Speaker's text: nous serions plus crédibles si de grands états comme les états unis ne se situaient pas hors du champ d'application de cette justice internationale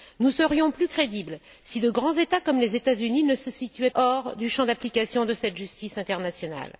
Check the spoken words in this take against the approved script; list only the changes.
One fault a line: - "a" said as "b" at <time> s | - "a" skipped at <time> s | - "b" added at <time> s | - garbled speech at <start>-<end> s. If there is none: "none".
- "pas" skipped at 3.9 s